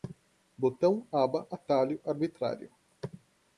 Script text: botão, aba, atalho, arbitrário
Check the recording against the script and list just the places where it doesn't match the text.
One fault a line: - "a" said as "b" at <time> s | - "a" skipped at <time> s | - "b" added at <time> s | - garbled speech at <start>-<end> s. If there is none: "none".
none